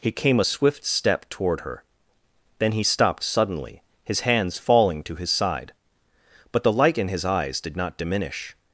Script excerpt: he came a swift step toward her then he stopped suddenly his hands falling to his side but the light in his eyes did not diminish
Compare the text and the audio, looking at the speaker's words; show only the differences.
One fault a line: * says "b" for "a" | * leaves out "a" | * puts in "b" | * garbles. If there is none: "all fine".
all fine